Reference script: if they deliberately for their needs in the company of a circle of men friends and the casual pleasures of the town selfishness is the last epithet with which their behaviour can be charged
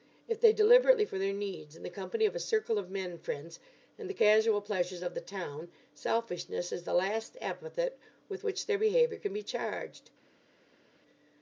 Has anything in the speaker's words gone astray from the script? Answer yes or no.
no